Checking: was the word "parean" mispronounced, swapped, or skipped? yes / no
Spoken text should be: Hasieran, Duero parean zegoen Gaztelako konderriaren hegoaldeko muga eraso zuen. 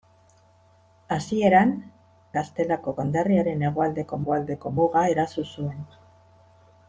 yes